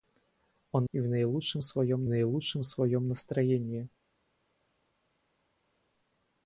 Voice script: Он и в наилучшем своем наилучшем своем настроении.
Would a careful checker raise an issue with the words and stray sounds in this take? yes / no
no